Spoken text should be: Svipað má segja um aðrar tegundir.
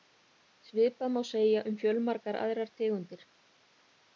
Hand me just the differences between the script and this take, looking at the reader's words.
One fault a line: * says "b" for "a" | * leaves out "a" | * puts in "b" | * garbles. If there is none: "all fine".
* puts in "fjölmargar"